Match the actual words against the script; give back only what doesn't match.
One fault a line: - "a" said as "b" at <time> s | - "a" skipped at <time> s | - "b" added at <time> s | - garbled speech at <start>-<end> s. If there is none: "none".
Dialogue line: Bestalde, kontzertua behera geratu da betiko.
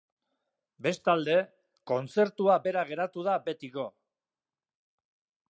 none